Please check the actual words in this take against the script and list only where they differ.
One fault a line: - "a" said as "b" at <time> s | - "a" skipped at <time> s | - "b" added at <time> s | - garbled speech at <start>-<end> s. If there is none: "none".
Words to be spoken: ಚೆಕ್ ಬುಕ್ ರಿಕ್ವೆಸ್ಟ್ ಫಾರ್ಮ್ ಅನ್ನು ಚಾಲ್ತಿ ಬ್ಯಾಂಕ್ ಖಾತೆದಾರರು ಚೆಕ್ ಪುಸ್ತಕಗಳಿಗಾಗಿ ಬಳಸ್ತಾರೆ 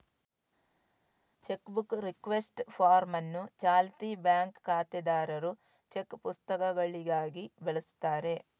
none